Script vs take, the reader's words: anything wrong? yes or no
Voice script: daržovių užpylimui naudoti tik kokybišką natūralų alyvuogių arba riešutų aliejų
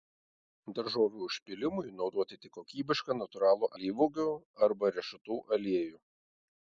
no